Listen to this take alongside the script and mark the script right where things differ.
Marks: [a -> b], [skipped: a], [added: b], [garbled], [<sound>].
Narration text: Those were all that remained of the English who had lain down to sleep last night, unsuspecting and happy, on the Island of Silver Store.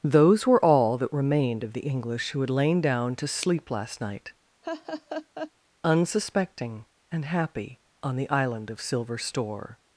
Those were all that remained of the English who had lain down to sleep last night, [laugh] unsuspecting and happy, on the Island of Silver Store.